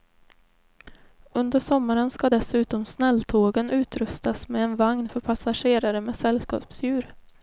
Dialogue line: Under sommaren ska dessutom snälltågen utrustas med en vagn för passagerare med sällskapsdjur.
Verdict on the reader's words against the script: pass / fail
pass